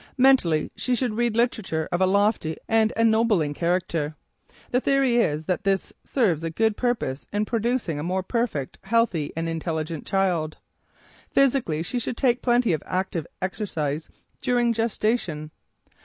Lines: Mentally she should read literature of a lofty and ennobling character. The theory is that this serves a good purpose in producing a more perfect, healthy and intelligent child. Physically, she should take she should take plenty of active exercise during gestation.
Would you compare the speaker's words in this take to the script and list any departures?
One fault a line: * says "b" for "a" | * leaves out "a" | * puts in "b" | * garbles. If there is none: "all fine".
* leaves out "she should take"